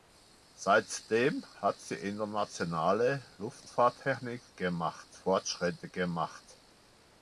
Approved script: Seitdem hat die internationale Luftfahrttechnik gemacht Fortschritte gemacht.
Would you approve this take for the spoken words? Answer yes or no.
yes